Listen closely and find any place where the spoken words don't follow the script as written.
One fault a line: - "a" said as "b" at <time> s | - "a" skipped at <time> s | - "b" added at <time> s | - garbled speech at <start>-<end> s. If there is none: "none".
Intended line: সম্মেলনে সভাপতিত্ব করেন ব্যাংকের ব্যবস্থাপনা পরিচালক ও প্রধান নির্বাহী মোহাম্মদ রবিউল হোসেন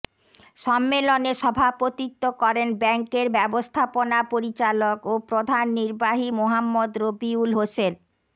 none